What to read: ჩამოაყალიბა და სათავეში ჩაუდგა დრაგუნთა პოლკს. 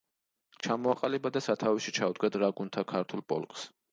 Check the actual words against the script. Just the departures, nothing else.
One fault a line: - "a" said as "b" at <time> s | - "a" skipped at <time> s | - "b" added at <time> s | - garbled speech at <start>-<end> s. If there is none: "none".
- "ქართულ" added at 2.9 s